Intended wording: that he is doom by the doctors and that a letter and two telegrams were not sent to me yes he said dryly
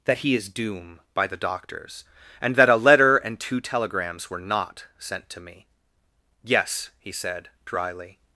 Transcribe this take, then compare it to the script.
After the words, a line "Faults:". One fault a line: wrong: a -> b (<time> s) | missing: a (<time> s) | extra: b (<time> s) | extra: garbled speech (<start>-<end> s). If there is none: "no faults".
that he is doom by the doctors and that a letter and two telegrams were not sent to me yes he said dryly
Faults:
no faults